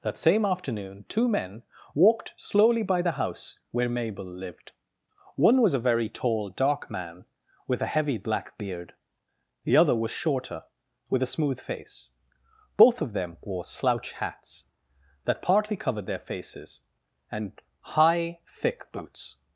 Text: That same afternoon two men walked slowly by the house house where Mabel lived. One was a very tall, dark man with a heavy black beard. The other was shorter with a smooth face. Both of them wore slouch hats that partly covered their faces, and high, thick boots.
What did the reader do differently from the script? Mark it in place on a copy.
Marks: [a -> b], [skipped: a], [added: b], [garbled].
That same afternoon two men walked slowly by the house [skipped: house] where Mabel lived. One was a very tall, dark man with a heavy black beard. The other was shorter with a smooth face. Both of them wore slouch hats that partly covered their faces, and high, thick boots.